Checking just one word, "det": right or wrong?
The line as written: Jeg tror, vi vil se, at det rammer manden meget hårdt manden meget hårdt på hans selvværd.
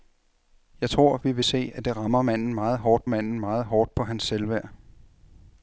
right